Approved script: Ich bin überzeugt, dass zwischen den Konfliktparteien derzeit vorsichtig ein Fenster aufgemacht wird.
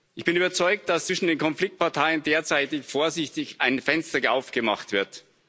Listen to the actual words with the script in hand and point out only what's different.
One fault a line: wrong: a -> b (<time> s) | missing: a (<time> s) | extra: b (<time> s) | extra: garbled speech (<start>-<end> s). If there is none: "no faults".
no faults